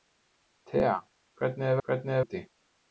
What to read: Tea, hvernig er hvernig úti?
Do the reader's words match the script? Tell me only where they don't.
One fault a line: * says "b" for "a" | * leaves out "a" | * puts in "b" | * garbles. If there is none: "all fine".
all fine